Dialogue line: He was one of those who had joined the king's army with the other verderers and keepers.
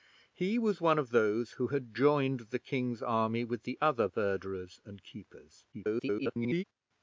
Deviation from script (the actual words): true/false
true